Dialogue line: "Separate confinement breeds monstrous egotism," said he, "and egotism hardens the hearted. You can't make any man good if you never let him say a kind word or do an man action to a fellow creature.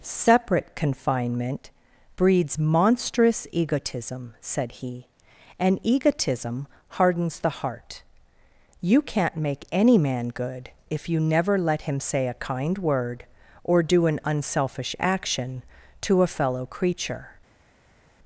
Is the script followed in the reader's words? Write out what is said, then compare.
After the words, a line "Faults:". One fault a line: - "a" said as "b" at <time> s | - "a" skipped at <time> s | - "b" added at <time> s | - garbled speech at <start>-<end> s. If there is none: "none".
"Separate confinement breeds monstrous egotism," said he, "and egotism hardens the heart. You can't make any man good if you never let him say a kind word or do an unselfish action to a fellow creature.
Faults:
- "hearted" said as "heart" at 7.5 s
- "man" said as "unselfish" at 14.2 s